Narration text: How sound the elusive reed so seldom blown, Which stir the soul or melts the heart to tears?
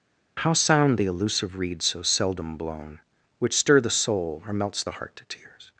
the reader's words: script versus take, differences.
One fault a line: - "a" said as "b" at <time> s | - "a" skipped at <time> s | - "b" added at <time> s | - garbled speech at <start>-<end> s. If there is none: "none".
none